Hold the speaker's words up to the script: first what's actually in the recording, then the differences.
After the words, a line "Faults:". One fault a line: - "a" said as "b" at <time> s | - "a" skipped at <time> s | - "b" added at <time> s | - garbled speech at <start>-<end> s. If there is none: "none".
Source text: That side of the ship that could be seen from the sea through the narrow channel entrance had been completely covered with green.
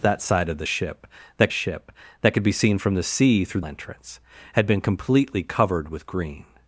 That side of the ship that ship that could be seen from the sea through entrance had been completely covered with green.
Faults:
- "ship that" added at 1.5 s
- "the narrow channel" skipped at 3.6 s